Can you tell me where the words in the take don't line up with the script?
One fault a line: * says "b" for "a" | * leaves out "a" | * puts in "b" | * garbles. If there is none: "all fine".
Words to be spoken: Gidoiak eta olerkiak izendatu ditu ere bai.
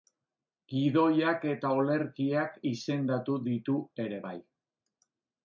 all fine